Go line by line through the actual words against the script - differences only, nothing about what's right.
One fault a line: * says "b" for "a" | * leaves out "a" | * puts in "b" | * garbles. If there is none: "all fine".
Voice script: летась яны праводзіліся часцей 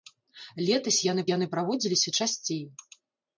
* puts in "яны"